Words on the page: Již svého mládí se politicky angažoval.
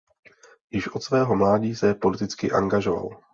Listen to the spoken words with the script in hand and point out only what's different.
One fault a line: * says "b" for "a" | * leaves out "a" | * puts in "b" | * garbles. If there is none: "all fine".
* puts in "od"